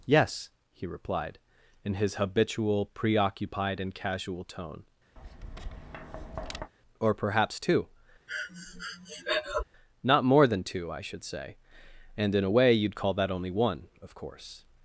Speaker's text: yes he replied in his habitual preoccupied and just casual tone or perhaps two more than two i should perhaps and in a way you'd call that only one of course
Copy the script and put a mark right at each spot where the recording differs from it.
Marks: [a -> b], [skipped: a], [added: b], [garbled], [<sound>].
yes he replied in his habitual preoccupied and [skipped: just] casual tone [tap] or perhaps two [breath] [added: not] more than two i should [perhaps -> say] and in a way you'd call that only one of course